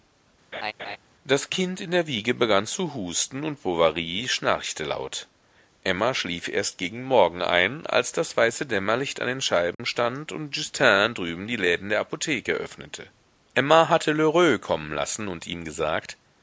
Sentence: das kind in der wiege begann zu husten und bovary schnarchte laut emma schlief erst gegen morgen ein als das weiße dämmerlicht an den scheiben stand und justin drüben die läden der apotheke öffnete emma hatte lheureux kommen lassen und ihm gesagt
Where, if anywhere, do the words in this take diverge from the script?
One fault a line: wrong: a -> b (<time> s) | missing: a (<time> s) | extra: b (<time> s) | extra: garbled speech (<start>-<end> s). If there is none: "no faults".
no faults